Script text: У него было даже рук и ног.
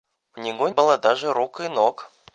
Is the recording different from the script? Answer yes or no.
no